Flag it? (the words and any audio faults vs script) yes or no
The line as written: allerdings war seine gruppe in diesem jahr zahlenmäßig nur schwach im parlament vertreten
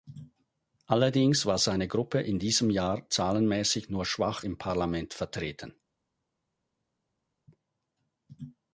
no